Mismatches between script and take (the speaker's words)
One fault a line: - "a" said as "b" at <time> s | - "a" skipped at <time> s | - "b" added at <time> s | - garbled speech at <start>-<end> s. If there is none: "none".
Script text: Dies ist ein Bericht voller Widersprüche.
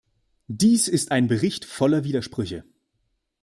none